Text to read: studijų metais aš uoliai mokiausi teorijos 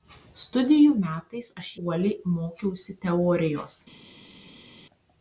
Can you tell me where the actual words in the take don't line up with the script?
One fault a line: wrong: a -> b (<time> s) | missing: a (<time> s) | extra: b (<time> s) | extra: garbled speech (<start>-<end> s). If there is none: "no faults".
no faults